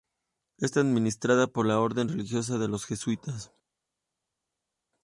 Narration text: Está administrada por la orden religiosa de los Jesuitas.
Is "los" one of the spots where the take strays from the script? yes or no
no